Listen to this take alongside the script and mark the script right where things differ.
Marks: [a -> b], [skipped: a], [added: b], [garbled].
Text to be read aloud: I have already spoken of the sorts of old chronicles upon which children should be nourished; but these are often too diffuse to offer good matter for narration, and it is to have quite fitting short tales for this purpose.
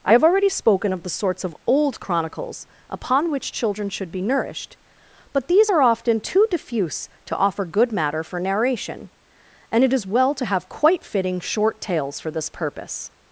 I have already spoken of the sorts of old chronicles upon which children should be nourished; but these are often too diffuse to offer good matter for narration, and it is [added: well] to have quite fitting short tales for this purpose.